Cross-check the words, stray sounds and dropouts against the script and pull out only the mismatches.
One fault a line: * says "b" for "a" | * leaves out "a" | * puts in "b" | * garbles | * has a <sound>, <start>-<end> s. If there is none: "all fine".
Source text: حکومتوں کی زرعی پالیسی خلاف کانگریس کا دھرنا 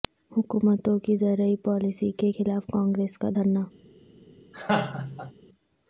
* puts in "کے"
* has a laugh, 4.5-5.3 s